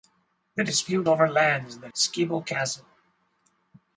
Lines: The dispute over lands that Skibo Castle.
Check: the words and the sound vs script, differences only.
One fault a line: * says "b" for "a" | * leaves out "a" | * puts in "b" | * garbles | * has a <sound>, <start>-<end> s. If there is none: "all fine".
all fine